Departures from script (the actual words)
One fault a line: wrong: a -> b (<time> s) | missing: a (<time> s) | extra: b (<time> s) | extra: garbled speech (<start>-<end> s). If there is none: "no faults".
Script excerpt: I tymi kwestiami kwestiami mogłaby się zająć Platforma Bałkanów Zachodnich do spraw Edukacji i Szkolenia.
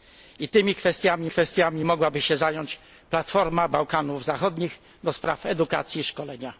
no faults